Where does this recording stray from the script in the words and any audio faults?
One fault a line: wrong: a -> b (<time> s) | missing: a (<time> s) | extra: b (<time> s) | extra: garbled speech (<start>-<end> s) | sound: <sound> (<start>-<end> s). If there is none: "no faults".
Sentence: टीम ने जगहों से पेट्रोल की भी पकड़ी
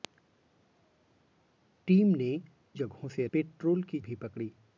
no faults